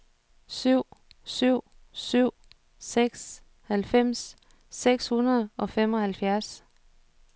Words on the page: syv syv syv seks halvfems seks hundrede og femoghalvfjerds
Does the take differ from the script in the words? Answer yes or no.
no